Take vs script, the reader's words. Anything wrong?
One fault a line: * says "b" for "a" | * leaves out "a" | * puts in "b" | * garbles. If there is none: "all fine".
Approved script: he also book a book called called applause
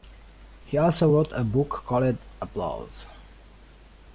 * says "wrote" for "book"
* leaves out "called"